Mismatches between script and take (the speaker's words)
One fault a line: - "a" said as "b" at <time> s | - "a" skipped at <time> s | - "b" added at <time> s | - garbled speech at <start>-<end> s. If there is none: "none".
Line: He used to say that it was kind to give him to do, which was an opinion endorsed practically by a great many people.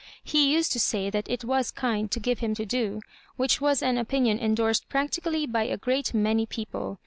none